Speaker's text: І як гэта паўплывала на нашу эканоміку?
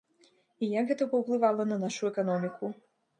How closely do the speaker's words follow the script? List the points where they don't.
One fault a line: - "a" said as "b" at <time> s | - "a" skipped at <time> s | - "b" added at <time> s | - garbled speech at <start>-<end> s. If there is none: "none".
none